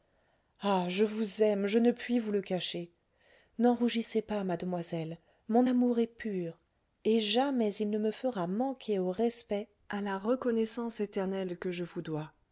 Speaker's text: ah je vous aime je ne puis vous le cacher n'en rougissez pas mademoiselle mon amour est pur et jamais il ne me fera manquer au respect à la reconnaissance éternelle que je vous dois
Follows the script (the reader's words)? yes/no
yes